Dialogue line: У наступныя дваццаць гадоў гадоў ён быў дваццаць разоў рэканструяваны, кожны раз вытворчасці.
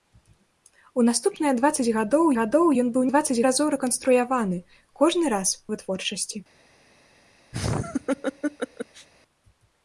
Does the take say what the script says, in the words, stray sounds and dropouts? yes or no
no